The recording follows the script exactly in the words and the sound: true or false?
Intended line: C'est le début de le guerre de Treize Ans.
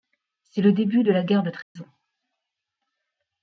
false